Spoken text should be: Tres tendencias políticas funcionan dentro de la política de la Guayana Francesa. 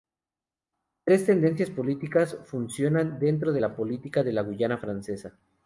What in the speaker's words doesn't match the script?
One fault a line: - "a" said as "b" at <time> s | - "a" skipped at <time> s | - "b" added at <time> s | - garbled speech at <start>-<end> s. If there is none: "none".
none